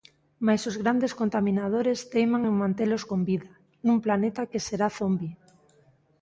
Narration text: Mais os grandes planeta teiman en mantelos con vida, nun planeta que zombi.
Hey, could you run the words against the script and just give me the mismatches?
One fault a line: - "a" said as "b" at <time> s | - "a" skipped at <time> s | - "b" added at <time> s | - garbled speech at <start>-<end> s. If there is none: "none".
- "planeta" said as "contaminadores" at 1.2 s
- "será" added at 4.7 s